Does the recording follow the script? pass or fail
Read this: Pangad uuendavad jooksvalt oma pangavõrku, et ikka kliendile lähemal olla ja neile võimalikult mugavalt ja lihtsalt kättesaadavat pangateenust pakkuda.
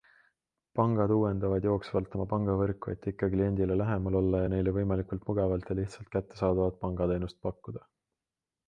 pass